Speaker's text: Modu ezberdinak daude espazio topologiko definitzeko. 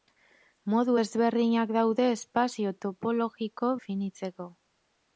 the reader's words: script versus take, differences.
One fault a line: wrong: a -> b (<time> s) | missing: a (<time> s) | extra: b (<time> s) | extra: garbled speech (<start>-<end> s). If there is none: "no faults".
no faults